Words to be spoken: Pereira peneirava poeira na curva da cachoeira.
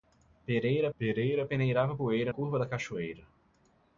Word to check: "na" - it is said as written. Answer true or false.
false